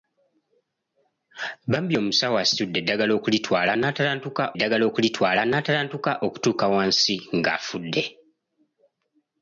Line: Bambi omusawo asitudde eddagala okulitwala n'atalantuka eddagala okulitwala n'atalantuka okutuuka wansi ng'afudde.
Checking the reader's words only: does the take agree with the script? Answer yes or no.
yes